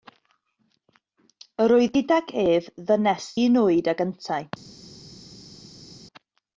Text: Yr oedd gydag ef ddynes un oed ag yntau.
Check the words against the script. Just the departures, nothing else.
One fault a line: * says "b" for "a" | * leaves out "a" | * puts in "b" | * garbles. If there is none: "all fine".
all fine